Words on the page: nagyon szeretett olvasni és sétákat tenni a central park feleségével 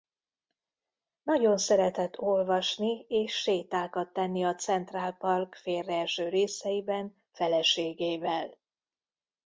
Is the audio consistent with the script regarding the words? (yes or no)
no